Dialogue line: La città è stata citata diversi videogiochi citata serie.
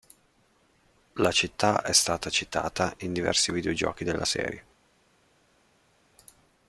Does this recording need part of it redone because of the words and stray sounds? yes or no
yes